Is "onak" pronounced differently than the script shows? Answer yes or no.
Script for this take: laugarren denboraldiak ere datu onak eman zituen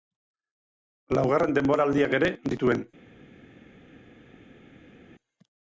yes